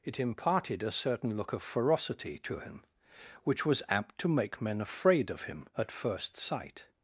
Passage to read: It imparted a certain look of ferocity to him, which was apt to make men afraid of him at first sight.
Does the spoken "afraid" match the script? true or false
true